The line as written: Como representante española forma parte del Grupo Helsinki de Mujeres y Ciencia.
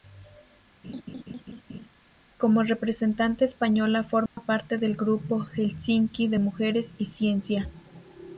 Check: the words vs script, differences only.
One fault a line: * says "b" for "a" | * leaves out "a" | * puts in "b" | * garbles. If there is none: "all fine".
all fine